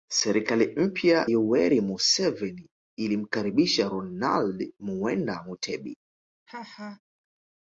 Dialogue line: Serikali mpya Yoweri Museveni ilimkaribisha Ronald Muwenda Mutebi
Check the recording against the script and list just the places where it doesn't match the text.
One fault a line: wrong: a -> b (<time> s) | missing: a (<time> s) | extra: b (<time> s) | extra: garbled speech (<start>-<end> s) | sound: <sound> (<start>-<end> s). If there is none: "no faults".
sound: laugh (6.5-7.0 s)